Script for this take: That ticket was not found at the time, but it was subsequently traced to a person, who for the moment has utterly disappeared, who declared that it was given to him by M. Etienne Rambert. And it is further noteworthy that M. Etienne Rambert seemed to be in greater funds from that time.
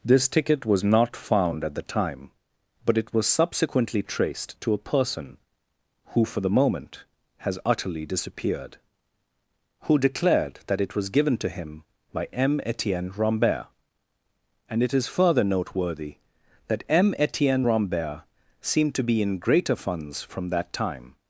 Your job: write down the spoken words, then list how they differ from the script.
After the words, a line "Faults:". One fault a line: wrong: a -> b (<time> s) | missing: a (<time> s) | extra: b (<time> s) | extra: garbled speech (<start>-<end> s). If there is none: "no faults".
This ticket was not found at the time, but it was subsequently traced to a person, who for the moment has utterly disappeared, who declared that it was given to him by M. Etienne Rambert. And it is further noteworthy that M. Etienne Rambert seemed to be in greater funds from that time.
Faults:
wrong: That -> This (0.0 s)